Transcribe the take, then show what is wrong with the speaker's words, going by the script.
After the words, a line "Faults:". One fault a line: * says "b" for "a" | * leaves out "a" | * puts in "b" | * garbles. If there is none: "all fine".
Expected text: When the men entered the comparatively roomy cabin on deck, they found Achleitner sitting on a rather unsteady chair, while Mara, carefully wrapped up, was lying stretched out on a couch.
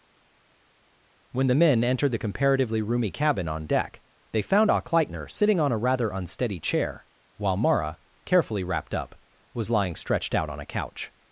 When the men entered the comparatively roomy cabin on deck, they found Achleitner sitting on a rather unsteady chair, while Mara, carefully wrapped up, was lying stretched out on a couch.
Faults:
all fine